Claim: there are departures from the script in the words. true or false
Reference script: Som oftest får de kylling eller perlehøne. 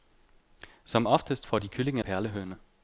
true